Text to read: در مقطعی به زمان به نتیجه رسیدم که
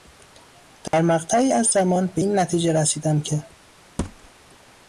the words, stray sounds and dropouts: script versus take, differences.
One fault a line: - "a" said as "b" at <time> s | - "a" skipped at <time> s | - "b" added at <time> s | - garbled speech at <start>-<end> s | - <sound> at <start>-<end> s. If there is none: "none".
- dropout at 0.9-0.9 s
- "به" said as "از" at 1.5 s
- "این" added at 2.2 s
- thud at 4.0-4.3 s